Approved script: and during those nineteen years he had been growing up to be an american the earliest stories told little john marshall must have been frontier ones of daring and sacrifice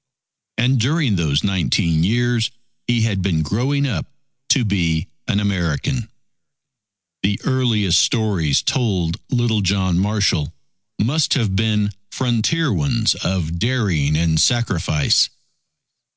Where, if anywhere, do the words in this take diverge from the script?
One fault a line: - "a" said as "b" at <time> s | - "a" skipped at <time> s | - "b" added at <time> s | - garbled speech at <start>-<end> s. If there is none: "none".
none